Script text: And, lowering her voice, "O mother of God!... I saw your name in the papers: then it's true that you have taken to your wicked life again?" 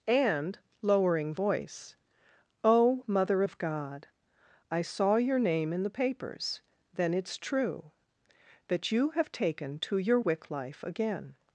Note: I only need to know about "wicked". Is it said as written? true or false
false